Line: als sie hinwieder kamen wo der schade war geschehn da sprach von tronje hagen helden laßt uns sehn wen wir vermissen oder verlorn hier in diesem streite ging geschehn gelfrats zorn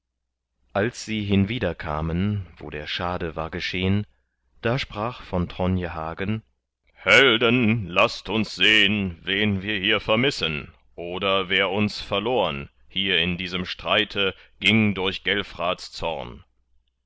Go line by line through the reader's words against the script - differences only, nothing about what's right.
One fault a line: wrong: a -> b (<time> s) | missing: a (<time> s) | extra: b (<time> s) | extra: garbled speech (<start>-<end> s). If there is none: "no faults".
extra: hier (9.8 s)
extra: wer uns (11.5 s)
wrong: geschehn -> durch (14.9 s)